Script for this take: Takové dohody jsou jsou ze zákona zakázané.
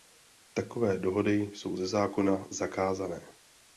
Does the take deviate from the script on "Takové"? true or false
false